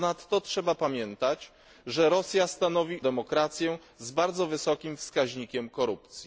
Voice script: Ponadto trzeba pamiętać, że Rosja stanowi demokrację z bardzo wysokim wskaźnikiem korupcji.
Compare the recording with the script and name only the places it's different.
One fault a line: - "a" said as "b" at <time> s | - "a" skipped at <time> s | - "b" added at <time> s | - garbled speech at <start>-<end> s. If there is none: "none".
none